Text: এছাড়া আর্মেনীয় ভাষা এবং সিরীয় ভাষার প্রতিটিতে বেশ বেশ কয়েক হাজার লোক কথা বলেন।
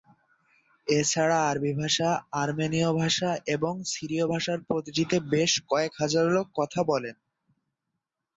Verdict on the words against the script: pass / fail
fail